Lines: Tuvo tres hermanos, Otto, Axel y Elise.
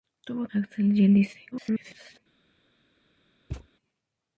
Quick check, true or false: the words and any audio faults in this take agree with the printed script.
false